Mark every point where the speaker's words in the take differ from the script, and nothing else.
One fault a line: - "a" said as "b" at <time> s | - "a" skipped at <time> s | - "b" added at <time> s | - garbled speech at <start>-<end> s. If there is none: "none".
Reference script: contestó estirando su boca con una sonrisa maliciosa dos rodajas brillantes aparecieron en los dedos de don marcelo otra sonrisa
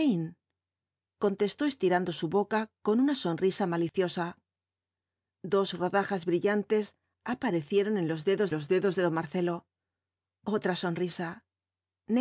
- "los dedos" added at 8.5 s